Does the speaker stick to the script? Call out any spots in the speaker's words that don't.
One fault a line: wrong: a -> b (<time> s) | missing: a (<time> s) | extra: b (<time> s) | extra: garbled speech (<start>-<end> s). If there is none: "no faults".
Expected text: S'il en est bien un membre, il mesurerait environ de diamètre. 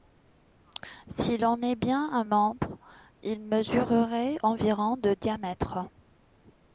no faults